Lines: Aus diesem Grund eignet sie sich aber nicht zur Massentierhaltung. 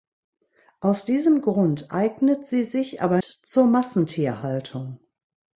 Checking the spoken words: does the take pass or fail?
fail